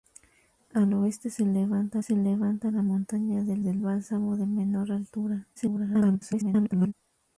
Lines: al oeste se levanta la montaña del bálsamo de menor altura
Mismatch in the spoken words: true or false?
true